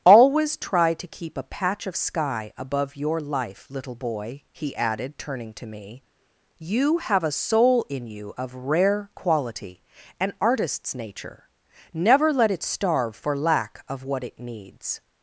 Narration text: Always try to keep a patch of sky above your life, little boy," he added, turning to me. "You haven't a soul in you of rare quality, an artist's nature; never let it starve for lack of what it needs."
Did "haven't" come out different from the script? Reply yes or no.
yes